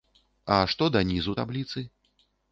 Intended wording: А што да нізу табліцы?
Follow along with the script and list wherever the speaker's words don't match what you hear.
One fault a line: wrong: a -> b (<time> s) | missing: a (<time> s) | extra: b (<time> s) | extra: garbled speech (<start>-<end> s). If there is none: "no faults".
no faults